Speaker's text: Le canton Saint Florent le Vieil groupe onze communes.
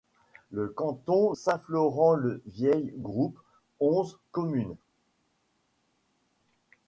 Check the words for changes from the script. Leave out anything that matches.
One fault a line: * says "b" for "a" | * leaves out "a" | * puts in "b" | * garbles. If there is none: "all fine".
all fine